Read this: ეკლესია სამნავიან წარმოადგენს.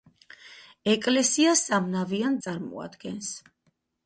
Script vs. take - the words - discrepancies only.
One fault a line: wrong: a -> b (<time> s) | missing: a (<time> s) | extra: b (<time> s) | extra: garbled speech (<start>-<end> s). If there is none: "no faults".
no faults